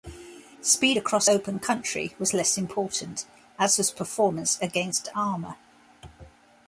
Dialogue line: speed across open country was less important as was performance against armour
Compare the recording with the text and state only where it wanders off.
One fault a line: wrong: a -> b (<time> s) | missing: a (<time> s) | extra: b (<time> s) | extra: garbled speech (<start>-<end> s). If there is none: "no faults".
no faults